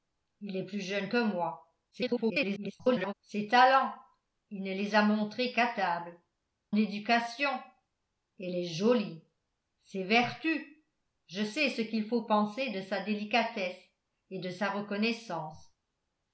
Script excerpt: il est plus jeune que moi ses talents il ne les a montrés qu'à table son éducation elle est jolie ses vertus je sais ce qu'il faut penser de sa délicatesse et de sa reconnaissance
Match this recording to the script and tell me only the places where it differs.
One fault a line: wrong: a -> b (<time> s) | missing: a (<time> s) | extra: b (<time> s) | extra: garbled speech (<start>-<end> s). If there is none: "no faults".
extra: garbled speech (1.9-3.1 s)
missing: son (6.2 s)